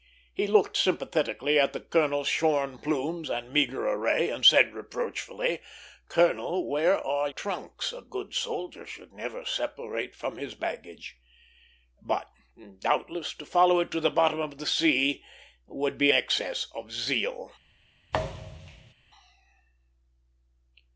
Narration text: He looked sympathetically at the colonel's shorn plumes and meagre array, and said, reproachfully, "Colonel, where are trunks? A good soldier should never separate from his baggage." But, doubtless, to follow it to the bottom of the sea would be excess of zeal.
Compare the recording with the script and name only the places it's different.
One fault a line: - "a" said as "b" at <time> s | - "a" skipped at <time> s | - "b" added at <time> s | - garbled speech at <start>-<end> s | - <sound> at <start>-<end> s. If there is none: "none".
- thud at 18.1-18.9 s